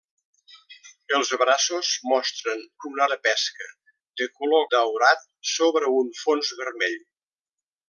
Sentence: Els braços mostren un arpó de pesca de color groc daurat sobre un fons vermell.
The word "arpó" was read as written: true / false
false